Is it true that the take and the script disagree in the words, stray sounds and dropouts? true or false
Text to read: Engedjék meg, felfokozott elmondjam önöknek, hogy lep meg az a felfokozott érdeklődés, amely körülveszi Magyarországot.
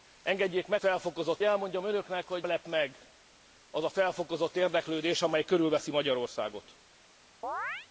true